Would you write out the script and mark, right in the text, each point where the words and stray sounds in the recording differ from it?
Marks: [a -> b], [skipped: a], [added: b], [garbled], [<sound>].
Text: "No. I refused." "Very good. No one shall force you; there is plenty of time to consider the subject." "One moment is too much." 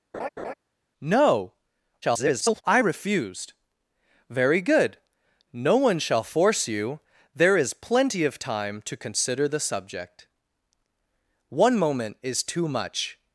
[laugh] "No. [garbled] I refused." "Very good. No one shall force you; there is plenty of time to consider the subject." "One moment is too much."